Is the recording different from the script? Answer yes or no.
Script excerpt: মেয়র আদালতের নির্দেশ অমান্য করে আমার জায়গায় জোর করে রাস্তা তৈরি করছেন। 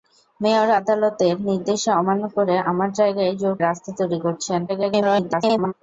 yes